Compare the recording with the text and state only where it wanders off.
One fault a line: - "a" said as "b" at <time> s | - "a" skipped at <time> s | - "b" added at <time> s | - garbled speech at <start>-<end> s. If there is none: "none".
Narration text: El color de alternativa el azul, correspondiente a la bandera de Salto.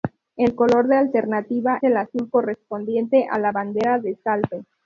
none